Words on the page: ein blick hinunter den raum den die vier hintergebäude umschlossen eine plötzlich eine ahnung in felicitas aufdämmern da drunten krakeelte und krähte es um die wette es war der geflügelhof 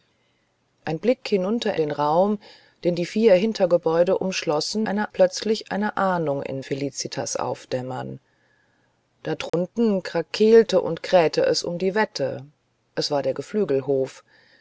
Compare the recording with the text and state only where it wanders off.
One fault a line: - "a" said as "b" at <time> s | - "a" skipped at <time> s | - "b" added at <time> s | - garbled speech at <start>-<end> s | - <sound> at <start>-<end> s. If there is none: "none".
- dropout at 9.5-9.5 s